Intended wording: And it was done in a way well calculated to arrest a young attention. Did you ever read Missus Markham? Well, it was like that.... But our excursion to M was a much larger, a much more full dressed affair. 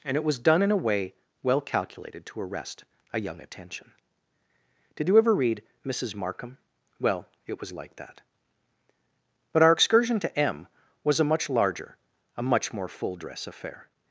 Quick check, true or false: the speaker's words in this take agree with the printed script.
false